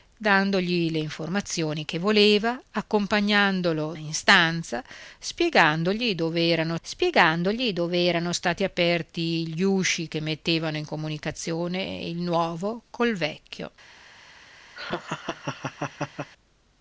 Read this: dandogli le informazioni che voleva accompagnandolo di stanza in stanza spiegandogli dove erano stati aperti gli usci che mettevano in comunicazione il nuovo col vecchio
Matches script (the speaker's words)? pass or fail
fail